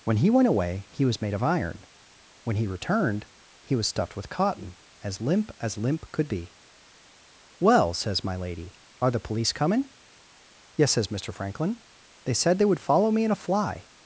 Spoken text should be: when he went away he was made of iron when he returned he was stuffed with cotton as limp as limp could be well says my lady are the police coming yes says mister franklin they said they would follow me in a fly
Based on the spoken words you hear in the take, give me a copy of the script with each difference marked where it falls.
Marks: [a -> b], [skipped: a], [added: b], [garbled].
when he went away he was made of iron when he returned he was stuffed with cotton as limp as limp could be well says my lady are the police coming yes says mister franklin they said they would follow me in a fly